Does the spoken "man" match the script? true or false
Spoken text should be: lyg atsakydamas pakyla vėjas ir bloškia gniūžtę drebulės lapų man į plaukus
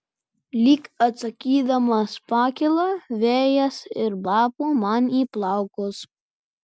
true